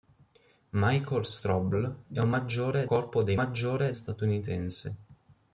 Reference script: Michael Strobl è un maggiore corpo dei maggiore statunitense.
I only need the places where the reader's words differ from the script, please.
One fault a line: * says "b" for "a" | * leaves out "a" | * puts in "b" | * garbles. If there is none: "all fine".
all fine